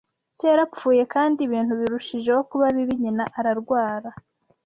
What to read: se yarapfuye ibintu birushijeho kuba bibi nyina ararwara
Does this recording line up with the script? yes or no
no